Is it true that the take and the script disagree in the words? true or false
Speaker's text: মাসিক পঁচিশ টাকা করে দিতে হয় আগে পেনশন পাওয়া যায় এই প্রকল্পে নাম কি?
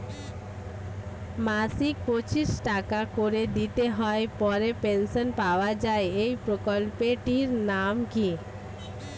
true